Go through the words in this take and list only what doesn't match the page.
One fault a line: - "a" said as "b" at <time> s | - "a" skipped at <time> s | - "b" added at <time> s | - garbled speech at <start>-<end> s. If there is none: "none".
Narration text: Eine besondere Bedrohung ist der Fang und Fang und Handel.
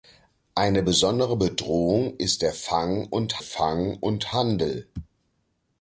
none